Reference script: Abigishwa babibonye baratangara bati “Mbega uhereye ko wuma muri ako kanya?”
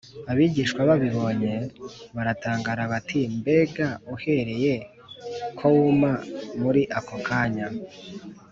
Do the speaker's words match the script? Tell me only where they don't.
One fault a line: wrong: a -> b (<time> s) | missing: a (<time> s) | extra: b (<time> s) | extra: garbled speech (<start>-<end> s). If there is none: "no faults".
no faults